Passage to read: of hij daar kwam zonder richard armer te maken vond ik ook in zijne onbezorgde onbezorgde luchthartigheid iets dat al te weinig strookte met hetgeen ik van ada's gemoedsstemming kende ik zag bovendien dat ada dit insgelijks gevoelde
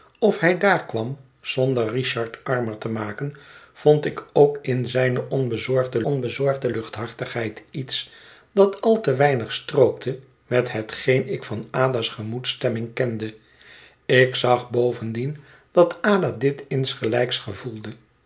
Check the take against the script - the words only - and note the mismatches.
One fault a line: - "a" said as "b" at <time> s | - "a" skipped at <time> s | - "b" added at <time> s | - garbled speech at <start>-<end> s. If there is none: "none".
none